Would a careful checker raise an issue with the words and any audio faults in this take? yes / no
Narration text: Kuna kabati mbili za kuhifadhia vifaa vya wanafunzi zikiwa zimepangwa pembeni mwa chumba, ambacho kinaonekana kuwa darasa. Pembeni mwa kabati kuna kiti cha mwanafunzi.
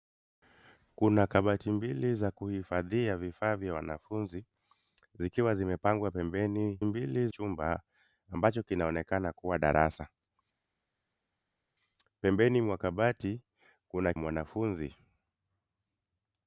yes